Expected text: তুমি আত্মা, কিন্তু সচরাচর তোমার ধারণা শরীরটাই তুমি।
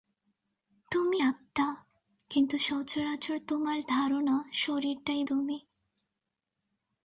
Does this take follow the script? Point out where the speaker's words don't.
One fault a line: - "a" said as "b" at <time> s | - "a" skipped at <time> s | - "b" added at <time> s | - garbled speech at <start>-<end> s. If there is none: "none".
none